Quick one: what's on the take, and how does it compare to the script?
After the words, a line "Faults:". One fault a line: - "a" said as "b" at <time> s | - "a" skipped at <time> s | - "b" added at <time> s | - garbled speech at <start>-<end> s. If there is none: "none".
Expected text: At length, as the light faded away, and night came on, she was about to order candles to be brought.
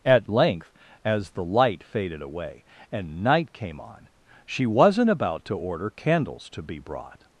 At length, as the light faded away, and night came on, she wasn't about to order candles to be brought.
Faults:
- "was" said as "wasn't" at 4.7 s